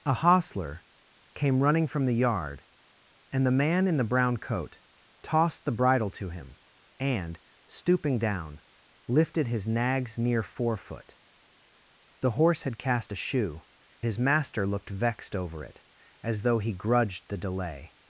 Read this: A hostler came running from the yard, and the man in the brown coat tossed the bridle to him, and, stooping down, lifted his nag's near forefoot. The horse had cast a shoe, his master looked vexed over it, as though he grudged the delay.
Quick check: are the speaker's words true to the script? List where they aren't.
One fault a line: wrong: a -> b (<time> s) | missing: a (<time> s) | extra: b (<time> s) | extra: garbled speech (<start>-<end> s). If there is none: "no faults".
no faults